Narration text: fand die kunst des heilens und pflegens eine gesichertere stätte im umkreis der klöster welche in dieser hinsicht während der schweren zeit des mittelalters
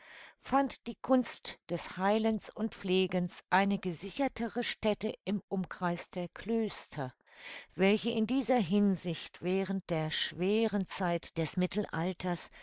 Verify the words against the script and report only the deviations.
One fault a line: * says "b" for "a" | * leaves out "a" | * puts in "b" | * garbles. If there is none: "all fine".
all fine